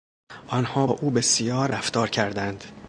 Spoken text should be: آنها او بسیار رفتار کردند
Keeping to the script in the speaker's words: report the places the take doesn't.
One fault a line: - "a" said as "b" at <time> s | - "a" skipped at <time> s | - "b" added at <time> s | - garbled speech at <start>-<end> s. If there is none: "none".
none